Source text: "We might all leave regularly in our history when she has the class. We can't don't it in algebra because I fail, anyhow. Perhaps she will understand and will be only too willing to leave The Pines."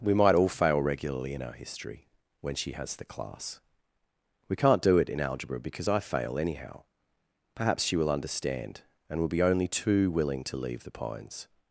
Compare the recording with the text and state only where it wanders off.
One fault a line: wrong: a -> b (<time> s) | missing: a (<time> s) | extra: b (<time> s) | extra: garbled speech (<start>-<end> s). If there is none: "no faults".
wrong: leave -> fail (0.5 s)
wrong: don't -> do (4.8 s)